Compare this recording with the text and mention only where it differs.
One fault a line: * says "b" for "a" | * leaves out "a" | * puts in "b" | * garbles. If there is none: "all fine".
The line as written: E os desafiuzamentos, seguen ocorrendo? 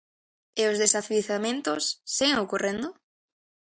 all fine